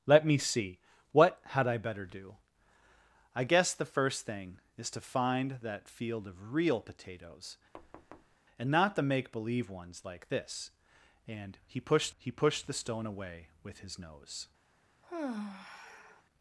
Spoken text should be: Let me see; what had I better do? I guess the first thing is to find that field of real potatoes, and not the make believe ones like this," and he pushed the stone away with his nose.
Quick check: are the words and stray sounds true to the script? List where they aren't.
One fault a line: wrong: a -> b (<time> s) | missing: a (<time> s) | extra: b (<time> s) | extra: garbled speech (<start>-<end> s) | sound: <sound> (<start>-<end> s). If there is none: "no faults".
sound: thud (7.7-8.4 s)
extra: he pushed (12.2 s)
sound: sigh (15.0-16.2 s)